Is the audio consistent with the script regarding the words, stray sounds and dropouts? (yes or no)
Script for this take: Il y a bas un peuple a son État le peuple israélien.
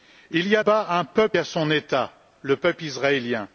yes